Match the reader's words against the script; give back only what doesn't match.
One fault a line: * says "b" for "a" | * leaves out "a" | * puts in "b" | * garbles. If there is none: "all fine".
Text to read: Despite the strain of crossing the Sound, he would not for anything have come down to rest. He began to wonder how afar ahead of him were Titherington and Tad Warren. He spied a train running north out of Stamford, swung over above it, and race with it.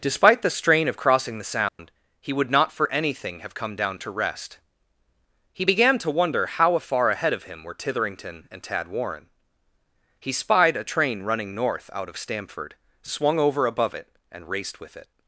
* says "raced" for "race"